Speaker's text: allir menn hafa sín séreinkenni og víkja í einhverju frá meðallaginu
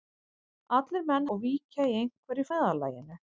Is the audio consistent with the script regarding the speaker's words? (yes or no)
no